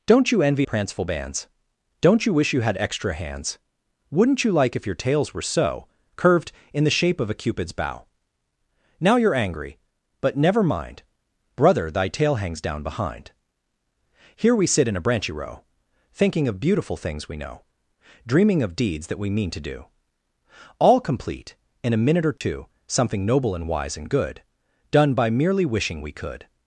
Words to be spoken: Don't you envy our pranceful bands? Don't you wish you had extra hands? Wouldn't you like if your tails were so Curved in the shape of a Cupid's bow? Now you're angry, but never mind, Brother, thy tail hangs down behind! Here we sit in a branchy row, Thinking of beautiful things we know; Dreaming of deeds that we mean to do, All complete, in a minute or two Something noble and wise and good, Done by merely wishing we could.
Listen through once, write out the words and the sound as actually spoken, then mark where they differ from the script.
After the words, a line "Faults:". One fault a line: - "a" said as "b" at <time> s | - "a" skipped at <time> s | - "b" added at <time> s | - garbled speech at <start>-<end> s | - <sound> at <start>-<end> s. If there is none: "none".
Don't you envy pranceful bands? Don't you wish you had extra hands? Wouldn't you like if your tails were so Curved in the shape of a Cupid's bow? Now you're angry, but never mind, Brother, thy tail hangs down behind! Here we sit in a branchy row, Thinking of beautiful things we know; Dreaming of deeds that we mean to do, All complete, in a minute or two Something noble and wise and good, Done by merely wishing we could.
Faults:
- "our" skipped at 0.7 s
- dropout at 22.4-22.4 s